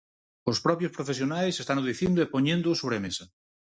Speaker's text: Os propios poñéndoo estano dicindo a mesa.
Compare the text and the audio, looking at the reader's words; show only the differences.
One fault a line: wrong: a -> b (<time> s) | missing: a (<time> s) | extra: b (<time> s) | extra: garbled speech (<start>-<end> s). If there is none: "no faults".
wrong: poñéndoo -> profesionais (1.0 s)
extra: e poñéndoo sobre (2.2 s)